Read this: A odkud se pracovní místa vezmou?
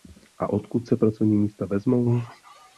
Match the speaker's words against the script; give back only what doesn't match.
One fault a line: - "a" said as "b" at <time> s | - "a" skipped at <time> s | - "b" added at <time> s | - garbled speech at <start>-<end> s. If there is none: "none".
none